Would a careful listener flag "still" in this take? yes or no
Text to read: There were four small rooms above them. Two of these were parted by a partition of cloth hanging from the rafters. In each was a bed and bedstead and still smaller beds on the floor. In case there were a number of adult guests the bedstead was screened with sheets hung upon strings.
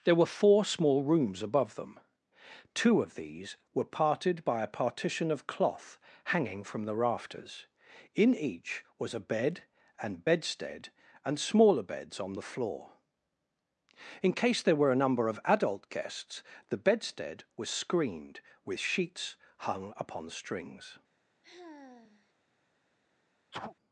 yes